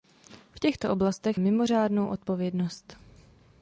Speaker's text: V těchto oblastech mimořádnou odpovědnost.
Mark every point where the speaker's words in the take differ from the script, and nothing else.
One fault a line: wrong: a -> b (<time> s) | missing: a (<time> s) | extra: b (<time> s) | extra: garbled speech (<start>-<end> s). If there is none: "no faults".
no faults